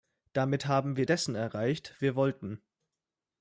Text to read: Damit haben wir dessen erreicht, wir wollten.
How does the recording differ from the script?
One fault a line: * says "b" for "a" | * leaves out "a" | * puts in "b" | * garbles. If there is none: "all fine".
all fine